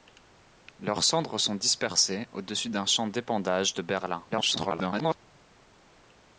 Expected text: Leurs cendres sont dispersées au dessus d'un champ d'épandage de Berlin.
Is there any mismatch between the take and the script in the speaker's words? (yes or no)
yes